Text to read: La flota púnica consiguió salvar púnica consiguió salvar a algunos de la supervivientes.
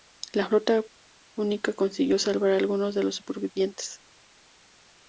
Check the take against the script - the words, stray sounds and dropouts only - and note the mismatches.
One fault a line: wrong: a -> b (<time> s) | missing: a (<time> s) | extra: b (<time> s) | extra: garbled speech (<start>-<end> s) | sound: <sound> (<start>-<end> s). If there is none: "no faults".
missing: púnica consiguió salvar (2.5 s)
wrong: la -> los (3.0 s)